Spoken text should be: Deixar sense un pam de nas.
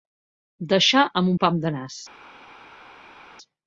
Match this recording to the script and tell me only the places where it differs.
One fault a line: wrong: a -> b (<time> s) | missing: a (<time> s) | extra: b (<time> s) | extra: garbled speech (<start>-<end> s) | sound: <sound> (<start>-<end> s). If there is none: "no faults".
wrong: sense -> amb (1.2 s)